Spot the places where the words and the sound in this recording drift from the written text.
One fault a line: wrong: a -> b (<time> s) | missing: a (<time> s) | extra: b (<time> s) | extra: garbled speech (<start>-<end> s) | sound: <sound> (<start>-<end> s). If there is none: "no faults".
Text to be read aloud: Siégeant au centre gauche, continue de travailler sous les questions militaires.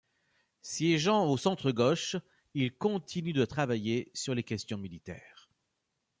extra: il (2.5 s)
wrong: sous -> sur (4.1 s)